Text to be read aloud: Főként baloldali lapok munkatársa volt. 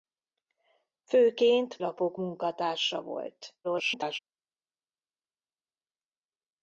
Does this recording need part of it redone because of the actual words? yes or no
yes